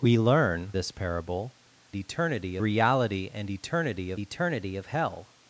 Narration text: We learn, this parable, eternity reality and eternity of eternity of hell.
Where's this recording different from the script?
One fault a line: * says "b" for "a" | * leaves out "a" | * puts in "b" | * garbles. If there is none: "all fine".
all fine